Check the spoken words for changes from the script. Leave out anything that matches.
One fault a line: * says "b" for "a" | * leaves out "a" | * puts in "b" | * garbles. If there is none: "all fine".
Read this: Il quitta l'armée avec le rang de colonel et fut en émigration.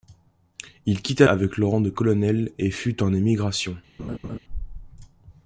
* leaves out "l'armée"